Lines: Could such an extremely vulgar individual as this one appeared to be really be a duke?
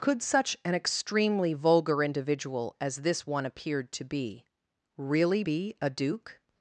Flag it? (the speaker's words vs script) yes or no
no